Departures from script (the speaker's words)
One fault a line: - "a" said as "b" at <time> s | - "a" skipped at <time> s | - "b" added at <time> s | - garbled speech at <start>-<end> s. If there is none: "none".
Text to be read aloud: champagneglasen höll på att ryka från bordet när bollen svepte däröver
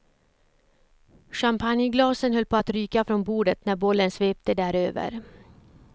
none